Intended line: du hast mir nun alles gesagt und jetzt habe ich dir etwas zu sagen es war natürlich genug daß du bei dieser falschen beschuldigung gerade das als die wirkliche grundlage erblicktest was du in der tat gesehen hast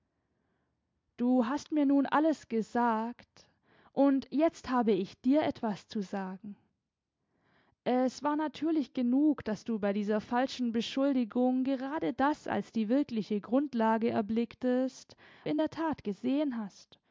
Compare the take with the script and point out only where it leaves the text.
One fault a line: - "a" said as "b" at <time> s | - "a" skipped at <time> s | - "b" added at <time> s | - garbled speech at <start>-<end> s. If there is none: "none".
- "was du" skipped at 15.2 s